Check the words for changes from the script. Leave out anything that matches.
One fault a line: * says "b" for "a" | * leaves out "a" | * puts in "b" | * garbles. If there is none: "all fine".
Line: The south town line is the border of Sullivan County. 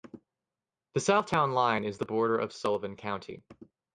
all fine